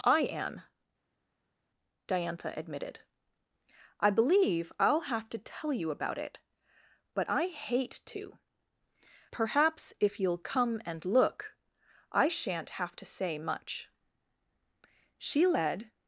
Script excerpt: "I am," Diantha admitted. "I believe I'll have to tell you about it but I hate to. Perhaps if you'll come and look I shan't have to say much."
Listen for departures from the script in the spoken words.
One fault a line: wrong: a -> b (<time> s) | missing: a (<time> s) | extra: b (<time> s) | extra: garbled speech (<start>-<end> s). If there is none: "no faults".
extra: She led (15.2 s)